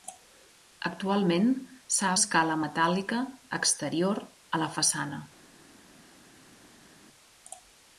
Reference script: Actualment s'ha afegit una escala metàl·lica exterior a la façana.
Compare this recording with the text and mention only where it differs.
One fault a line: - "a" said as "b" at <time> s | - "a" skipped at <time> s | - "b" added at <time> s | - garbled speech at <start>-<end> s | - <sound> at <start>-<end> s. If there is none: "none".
- "afegit una" skipped at 2.1 s